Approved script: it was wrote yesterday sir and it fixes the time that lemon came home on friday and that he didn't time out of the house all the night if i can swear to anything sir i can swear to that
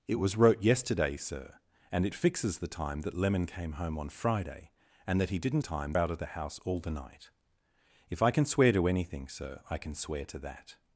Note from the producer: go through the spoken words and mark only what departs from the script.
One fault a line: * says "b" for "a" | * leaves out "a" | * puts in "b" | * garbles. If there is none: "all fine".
all fine